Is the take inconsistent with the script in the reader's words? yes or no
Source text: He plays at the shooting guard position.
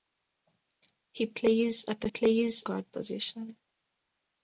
yes